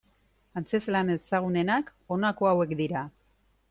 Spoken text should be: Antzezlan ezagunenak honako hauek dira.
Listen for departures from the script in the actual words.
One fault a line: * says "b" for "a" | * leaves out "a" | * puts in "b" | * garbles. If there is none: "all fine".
all fine